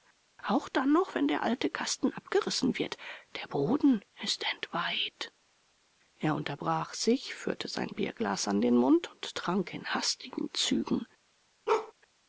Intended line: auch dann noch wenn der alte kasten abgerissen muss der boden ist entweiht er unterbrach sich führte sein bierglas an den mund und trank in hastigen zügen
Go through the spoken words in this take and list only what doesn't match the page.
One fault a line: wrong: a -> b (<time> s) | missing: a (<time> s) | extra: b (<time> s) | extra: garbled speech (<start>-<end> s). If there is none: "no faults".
wrong: muss -> wird (2.8 s)